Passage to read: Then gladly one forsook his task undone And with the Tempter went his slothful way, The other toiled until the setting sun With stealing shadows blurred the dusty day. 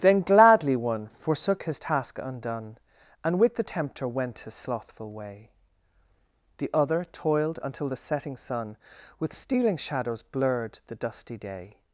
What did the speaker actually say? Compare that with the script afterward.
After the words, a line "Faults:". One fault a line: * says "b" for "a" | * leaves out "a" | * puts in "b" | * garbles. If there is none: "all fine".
Then gladly one forsook his task undone And with the Tempter went his slothful way, The other toiled until the setting sun With stealing shadows blurred the dusty day.
Faults:
all fine